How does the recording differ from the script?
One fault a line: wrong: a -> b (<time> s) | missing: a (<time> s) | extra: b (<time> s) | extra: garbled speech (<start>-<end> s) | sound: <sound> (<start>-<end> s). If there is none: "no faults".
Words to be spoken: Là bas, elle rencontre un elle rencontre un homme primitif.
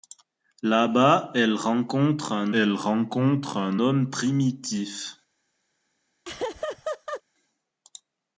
sound: laugh (6.2-7.2 s)